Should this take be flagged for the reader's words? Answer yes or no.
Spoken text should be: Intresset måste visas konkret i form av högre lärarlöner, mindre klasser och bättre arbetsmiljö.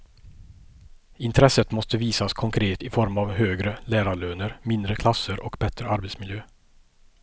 no